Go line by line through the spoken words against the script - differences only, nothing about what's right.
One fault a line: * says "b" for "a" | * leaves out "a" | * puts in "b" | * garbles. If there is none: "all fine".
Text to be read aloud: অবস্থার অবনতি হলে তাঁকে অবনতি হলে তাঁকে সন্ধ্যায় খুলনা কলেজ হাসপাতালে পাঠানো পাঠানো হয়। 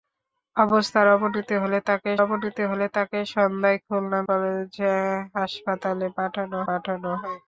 all fine